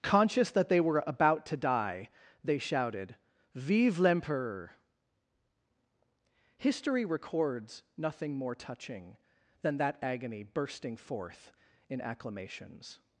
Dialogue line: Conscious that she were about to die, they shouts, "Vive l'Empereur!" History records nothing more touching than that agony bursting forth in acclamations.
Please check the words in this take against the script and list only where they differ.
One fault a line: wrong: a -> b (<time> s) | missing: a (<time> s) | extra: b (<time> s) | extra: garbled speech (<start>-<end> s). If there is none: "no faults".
wrong: she -> they (0.7 s)
wrong: shouts -> shouted (2.6 s)